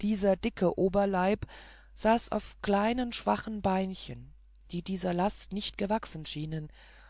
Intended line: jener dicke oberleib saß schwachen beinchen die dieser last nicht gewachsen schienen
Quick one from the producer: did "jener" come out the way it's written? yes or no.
no